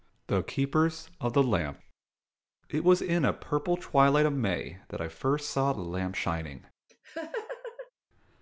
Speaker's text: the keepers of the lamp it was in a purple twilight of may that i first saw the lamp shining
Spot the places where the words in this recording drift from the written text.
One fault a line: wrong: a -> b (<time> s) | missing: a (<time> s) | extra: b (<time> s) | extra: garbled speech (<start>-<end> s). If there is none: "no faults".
no faults